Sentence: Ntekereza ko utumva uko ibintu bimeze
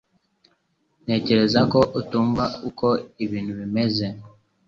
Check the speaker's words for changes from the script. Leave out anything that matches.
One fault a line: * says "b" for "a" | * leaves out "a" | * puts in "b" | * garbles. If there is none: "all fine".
all fine